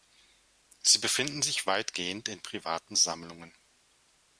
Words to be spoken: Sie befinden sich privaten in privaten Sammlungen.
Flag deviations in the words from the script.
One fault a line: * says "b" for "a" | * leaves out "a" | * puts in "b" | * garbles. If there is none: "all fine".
* says "weitgehend" for "privaten"